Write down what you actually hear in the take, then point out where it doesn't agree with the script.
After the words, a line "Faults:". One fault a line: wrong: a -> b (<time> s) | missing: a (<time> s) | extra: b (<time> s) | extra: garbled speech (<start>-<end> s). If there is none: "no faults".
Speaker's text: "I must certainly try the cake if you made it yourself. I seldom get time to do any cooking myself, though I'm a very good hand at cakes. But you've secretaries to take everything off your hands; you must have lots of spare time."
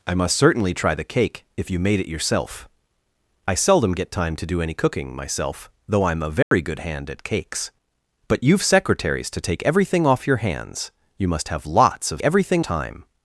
"I must certainly try the cake if you made it yourself. I seldom get time to do any cooking myself, though I'm a very good hand at cakes. But you've secretaries to take everything off your hands; you must have lots of everything time."
Faults:
wrong: spare -> everything (12.2 s)